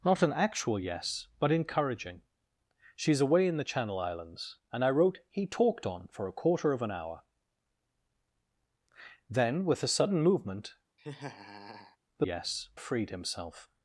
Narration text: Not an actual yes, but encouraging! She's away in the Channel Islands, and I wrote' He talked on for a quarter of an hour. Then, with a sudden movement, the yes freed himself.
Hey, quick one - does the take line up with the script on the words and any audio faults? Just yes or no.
no